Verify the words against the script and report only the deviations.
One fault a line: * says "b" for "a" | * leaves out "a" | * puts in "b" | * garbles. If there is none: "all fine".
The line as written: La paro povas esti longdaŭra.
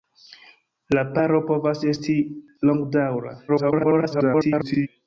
* garbles